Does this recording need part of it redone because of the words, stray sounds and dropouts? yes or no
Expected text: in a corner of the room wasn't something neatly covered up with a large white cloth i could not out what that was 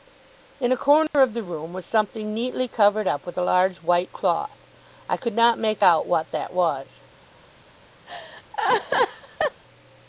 yes